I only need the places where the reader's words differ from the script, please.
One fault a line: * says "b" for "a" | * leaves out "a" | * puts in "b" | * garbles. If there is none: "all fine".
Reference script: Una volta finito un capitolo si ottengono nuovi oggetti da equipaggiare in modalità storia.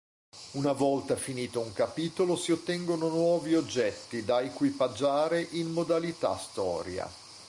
all fine